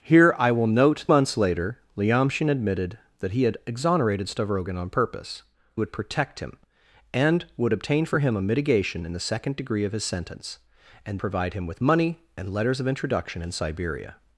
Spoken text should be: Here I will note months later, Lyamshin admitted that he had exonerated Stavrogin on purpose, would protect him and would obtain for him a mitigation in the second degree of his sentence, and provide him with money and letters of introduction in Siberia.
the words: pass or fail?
pass